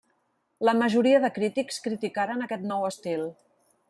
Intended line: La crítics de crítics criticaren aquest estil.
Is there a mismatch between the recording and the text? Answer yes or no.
yes